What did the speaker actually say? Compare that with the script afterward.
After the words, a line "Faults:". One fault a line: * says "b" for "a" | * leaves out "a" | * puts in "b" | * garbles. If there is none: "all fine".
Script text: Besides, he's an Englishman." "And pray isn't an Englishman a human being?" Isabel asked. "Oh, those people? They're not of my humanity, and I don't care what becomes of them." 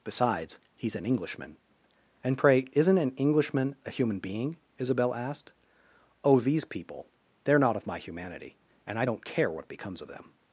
Besides, he's an Englishman." "And pray isn't an Englishman a human being?" Isabel asked. "Oh, these people? They're not of my humanity, and I don't care what becomes of them."
Faults:
* says "these" for "those"